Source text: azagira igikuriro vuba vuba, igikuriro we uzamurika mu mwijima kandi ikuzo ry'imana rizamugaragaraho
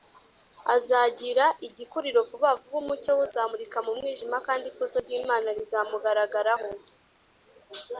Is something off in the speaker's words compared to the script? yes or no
yes